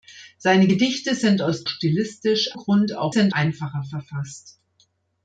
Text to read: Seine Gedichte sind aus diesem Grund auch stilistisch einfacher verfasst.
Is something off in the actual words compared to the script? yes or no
yes